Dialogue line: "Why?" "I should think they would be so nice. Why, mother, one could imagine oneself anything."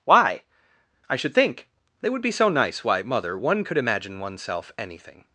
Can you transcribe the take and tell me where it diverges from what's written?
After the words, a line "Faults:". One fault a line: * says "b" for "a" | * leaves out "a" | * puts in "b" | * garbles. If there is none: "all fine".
"Why?" "I should think they would be so nice. Why, mother, one could imagine oneself anything."
Faults:
all fine